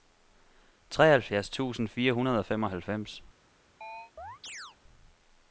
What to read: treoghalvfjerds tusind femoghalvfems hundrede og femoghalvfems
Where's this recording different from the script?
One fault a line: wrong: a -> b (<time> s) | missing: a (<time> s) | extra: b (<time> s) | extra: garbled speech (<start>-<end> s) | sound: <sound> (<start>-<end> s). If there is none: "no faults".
wrong: femoghalvfems -> fire (1.9 s)
sound: chirp (3.8-4.8 s)